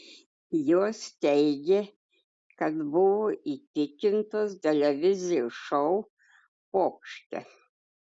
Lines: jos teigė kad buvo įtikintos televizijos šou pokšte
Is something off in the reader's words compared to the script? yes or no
no